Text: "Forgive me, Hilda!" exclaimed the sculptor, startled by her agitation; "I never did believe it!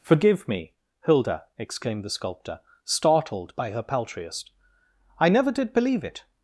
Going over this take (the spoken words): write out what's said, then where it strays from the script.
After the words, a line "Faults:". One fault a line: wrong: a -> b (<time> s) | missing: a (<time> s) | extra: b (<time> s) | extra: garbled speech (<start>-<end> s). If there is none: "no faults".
"Forgive me, Hilda!" exclaimed the sculptor, startled by her paltriest; "I never did believe it!
Faults:
wrong: agitation -> paltriest (3.8 s)